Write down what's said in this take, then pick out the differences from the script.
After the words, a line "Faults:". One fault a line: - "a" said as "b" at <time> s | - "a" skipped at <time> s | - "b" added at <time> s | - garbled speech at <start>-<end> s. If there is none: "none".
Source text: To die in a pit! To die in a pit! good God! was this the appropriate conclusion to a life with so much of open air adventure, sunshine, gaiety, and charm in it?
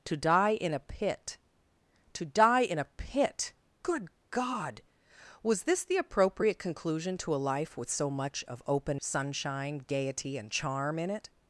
To die in a pit! To die in a pit! good God! was this the appropriate conclusion to a life with so much of open sunshine, gaiety, and charm in it?
Faults:
- "air adventure" skipped at 9.0 s